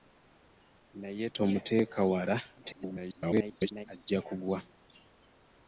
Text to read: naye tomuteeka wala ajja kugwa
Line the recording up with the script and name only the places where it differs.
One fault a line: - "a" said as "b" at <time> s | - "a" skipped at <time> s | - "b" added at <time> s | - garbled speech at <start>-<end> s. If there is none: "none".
- garbled speech at 2.6-3.9 s